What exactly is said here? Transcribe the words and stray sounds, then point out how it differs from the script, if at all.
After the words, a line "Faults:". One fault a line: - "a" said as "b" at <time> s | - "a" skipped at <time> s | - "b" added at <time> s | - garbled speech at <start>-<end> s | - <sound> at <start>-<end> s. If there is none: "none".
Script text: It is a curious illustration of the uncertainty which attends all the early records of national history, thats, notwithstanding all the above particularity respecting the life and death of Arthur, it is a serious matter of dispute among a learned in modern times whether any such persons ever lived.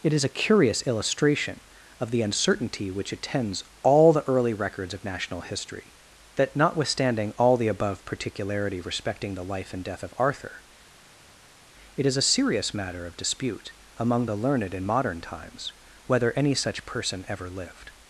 It is a curious illustration of the uncertainty which attends all the early records of national history, that, notwithstanding all the above particularity respecting the life and death of Arthur, it is a serious matter of dispute among the learned in modern times whether any such person ever lived.
Faults:
- "thats" said as "that" at 6.4 s
- "a" said as "the" at 14.2 s
- "persons" said as "person" at 16.9 s